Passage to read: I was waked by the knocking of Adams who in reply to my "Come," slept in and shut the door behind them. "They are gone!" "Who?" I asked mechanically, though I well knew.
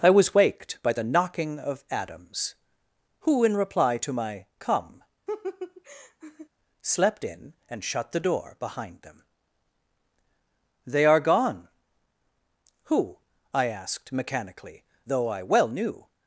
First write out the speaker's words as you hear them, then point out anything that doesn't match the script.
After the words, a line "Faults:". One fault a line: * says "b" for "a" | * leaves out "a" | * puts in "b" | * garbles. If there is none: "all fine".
I was waked by the knocking of Adams who in reply to my "Come," slept in and shut the door behind them. "They are gone!" "Who?" I asked mechanically, though I well knew.
Faults:
all fine